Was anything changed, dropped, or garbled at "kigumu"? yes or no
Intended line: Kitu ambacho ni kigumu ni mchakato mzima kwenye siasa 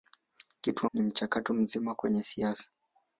yes